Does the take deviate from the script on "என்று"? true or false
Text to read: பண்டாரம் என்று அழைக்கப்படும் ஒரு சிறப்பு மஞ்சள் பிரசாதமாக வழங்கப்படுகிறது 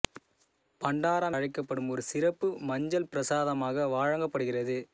true